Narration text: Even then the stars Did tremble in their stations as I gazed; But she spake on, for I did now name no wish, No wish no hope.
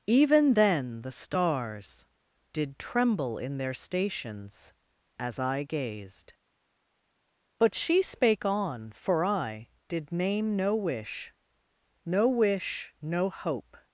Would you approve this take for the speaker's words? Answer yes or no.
no